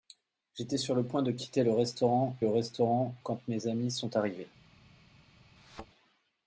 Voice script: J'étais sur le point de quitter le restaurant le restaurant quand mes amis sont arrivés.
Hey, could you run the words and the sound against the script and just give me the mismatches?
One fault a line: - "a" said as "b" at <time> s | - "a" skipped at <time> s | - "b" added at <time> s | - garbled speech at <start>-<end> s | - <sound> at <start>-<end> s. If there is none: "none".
- thud at 5.6-5.9 s